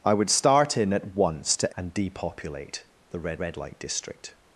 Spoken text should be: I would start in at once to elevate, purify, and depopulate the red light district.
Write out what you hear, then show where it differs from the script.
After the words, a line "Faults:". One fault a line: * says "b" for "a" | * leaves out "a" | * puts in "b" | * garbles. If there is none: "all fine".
I would start in at once to and depopulate the red red light district.
Faults:
* leaves out "elevate purify"
* puts in "red"